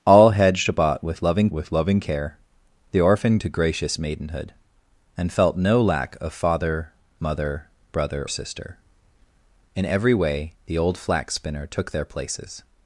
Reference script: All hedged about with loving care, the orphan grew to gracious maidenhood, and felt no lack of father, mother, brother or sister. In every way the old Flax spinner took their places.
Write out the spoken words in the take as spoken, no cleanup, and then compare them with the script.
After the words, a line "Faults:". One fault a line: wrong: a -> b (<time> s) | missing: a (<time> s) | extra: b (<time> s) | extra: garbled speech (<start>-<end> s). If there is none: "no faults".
All hedged about with loving with loving care, the orphan to gracious maidenhood, and felt no lack of father, mother, brother sister. In every way the old Flax spinner took their places.
Faults:
extra: with loving (1.5 s)
missing: grew (3.4 s)
missing: or (8.3 s)